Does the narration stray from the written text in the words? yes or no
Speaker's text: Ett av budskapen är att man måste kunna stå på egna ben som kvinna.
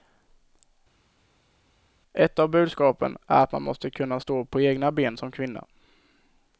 no